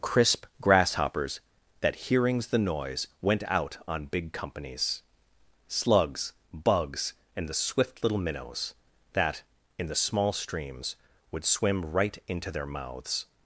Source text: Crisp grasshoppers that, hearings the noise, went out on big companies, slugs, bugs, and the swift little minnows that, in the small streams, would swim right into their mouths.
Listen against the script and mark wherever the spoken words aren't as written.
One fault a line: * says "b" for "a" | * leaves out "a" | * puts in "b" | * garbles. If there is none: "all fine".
all fine